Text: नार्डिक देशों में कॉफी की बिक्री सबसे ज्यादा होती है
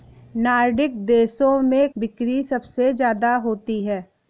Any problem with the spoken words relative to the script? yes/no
yes